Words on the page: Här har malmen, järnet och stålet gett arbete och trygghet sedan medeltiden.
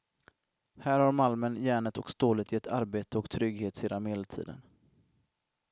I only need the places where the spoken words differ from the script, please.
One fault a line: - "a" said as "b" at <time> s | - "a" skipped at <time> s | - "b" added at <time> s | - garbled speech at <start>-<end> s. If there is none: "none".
none